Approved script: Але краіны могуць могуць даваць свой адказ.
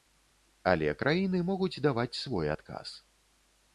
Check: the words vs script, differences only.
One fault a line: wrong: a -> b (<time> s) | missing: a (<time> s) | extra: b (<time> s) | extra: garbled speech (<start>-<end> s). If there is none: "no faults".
missing: могуць (1.8 s)